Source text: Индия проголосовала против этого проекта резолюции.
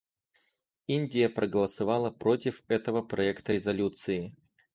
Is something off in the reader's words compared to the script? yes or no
no